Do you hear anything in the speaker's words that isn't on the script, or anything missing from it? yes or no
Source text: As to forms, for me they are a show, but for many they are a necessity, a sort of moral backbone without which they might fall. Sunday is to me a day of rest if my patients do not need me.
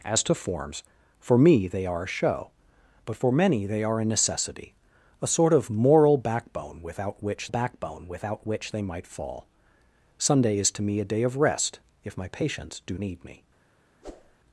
yes